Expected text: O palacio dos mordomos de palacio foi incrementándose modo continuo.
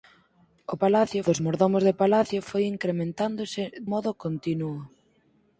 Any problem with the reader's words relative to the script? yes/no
no